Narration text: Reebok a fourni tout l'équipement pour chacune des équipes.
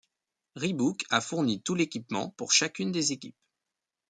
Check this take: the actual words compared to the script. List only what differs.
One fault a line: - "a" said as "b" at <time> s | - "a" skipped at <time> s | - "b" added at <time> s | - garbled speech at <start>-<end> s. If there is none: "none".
none